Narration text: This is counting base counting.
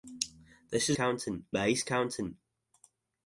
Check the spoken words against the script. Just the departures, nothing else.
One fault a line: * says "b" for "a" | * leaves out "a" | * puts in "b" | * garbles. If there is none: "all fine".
all fine